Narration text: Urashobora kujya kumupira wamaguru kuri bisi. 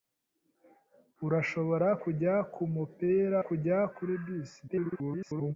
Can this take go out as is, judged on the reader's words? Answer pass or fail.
fail